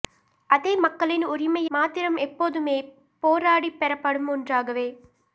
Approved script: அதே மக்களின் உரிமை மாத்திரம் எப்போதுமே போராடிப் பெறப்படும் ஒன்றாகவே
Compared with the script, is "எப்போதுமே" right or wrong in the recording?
right